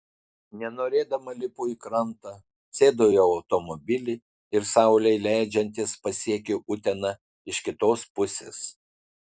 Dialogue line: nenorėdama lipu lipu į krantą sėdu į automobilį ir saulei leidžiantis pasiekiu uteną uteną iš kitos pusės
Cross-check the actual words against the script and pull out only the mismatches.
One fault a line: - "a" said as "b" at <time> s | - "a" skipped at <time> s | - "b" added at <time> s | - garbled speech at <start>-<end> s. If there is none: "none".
- "lipu" skipped at 1.7 s
- "uteną" skipped at 7.1 s